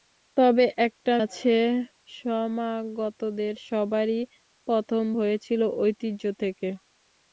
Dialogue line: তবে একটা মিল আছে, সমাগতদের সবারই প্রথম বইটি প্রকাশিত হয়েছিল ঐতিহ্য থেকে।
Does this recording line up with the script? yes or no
no